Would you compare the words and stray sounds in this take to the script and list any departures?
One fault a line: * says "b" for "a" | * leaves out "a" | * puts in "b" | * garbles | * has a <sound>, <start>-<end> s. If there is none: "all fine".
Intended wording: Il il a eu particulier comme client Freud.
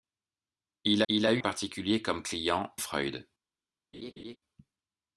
* has a laugh, 3.9-4.4 s